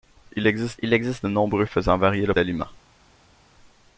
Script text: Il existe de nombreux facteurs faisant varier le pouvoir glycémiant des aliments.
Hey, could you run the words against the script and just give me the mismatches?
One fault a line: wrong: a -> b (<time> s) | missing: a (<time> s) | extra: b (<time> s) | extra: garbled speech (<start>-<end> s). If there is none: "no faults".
extra: il existe (0.8 s)
missing: facteurs (1.7 s)
missing: pouvoir glycémiant des (2.3 s)